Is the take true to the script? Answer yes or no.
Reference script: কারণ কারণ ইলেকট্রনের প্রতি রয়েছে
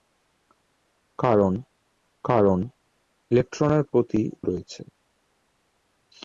yes